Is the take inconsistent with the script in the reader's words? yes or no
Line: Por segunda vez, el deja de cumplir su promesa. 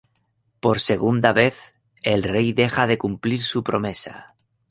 yes